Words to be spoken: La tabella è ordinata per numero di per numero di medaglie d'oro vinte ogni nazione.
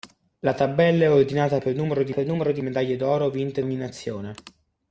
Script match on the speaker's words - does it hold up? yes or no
yes